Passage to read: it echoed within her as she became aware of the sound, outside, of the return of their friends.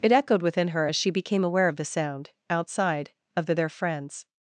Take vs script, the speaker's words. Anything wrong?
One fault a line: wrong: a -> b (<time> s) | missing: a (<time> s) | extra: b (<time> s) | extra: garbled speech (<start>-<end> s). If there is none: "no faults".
missing: return of (3.5 s)